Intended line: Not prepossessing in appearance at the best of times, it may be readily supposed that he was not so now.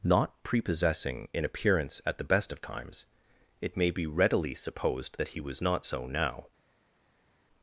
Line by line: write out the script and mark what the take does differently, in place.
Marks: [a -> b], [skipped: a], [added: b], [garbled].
Not prepossessing in appearance at the best of times, it may be readily supposed that he was not so now.